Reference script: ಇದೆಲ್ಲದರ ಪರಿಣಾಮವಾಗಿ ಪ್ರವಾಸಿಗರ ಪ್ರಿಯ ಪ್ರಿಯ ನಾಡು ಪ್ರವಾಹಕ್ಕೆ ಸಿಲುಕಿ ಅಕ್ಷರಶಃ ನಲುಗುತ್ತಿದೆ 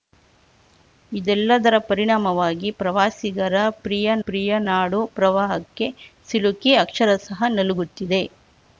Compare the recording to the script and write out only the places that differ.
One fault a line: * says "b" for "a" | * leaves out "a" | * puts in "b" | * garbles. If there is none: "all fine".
all fine